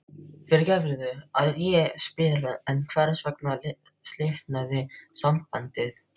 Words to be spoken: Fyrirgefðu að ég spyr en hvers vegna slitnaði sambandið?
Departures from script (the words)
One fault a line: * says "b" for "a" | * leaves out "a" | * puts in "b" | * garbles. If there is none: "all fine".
all fine